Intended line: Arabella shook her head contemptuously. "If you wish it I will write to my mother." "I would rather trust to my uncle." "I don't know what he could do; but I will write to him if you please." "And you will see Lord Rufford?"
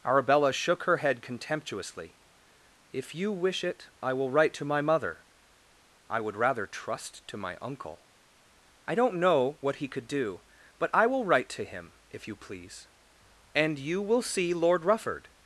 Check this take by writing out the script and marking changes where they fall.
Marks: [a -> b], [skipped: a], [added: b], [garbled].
Arabella shook her head contemptuously. "If you wish it I will write to my mother." "I would rather trust to my uncle." "I don't know what he could do; but I will write to him if you please." "And you will see Lord Rufford?"